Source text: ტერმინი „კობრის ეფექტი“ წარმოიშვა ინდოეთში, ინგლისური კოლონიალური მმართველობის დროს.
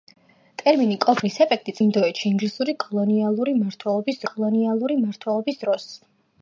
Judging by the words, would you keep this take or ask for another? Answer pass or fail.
fail